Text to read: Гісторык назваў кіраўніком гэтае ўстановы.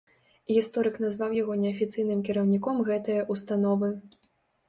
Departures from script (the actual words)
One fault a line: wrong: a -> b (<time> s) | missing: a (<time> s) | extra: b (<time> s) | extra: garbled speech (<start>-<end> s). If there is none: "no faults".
extra: яго неафіцыйным (1.4 s)